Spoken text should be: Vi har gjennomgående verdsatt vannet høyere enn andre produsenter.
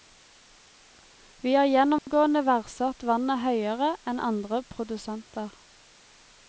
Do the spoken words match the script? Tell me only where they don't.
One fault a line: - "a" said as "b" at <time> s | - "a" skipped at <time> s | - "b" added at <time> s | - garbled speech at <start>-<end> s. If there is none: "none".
none